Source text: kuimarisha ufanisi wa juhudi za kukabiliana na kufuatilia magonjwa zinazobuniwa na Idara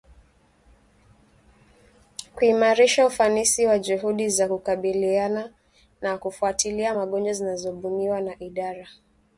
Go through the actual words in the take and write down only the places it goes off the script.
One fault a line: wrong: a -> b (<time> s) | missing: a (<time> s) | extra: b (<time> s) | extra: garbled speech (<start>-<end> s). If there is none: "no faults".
no faults